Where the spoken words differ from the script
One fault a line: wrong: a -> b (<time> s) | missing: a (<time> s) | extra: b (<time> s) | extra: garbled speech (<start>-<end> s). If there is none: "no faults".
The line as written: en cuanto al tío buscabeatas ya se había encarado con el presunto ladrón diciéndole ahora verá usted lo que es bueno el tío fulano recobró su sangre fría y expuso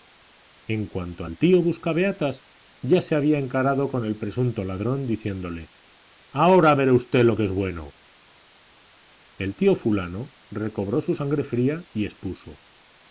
no faults